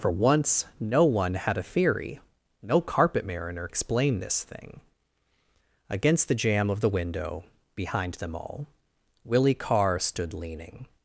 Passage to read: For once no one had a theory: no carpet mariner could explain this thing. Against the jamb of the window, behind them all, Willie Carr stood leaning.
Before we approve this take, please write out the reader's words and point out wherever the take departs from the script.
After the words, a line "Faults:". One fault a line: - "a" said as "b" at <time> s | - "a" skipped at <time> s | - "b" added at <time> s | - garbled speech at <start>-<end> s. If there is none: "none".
For once no one had a theory: no carpet mariner explain this thing. Against the jamb of the window, behind them all, Willie Carr stood leaning.
Faults:
- "could" skipped at 3.7 s